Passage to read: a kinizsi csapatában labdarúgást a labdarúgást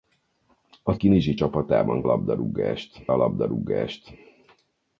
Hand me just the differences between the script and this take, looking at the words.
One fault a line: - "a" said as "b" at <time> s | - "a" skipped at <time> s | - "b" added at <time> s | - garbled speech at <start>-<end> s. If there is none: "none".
none